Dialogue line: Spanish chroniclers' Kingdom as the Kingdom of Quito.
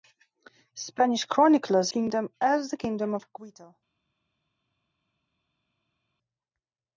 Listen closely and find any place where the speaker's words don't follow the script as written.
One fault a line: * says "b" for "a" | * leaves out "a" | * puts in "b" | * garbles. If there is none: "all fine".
all fine